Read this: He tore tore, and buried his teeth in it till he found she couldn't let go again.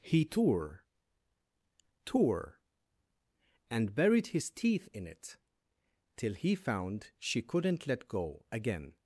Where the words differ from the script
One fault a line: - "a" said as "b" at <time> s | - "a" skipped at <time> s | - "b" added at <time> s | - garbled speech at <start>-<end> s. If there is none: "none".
none